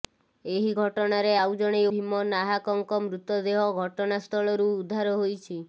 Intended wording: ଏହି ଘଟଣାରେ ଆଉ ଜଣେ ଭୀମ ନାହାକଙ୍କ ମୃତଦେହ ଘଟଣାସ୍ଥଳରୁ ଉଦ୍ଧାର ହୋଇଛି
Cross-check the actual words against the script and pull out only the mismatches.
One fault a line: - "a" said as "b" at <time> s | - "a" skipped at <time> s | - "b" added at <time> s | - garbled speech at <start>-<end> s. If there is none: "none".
none